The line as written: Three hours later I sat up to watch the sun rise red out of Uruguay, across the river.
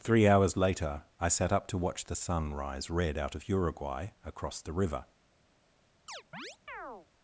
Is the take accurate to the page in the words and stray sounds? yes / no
no